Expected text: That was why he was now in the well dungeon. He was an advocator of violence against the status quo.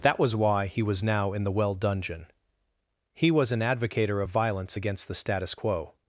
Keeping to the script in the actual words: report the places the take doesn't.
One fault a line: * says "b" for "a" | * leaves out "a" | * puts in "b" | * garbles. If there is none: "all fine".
all fine